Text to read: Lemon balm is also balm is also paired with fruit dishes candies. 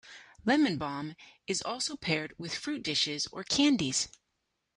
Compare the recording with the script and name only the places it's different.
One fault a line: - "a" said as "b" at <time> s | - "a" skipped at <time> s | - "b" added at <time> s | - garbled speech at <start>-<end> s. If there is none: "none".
- "balm is also" skipped at 2.0 s
- "or" added at 3.3 s